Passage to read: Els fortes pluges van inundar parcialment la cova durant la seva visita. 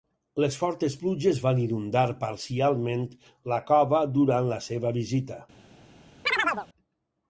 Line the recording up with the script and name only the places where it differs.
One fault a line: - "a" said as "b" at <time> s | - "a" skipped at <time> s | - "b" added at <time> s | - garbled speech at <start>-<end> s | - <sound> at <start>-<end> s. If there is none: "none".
- "Els" said as "Les" at 0.4 s
- chirp at 6.3-6.7 s